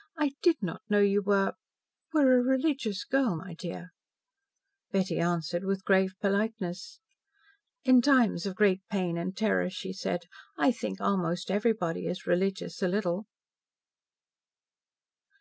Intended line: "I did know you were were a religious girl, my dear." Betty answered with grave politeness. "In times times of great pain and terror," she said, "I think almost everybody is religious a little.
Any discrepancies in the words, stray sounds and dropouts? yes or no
yes